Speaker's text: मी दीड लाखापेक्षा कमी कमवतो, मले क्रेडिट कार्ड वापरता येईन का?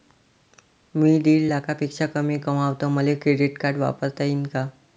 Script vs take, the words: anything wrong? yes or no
no